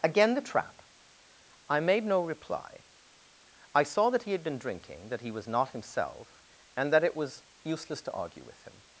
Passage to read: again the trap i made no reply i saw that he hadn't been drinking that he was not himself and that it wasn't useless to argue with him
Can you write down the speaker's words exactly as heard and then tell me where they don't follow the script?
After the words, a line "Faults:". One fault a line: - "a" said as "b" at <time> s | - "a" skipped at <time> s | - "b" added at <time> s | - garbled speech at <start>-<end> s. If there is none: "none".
again the trap i made no reply i saw that he had been drinking that he was not himself and that it was useless to argue with him
Faults:
- "hadn't" said as "had" at 4.3 s
- "wasn't" said as "was" at 7.2 s